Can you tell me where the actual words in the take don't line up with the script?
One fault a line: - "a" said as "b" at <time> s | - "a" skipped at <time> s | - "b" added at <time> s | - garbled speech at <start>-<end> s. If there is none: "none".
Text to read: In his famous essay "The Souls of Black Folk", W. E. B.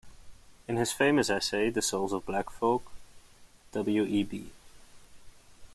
none